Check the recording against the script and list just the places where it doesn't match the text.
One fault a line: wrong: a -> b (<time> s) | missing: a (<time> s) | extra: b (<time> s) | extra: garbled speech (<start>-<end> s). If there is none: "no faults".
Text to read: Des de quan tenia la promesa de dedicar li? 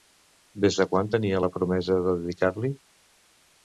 no faults